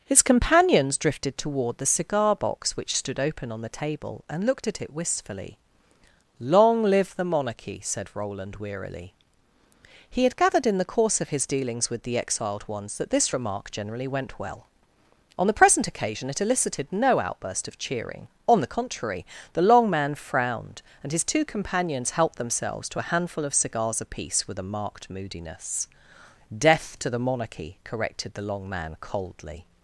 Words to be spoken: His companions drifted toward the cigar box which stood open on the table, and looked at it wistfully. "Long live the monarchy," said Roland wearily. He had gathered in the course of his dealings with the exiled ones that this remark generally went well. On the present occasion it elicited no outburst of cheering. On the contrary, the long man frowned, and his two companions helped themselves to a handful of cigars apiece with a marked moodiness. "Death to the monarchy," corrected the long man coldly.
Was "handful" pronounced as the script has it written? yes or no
yes